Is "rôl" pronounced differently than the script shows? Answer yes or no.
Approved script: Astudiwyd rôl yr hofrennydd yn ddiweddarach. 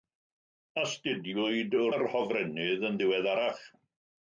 yes